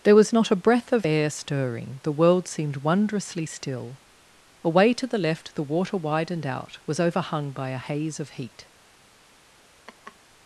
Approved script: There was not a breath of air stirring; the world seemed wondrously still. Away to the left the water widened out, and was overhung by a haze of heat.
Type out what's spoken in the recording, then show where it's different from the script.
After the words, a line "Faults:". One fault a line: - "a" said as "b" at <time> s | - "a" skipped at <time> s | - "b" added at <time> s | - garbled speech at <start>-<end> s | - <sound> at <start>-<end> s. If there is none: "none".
There was not a breath of air stirring; the world seemed wondrously still. Away to the left the water widened out, was overhung by a haze of heat.
Faults:
- "and" skipped at 6.8 s
- laugh at 9.9-10.2 s